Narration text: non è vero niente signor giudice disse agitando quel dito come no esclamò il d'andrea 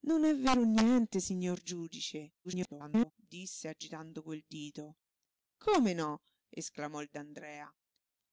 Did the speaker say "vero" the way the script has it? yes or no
yes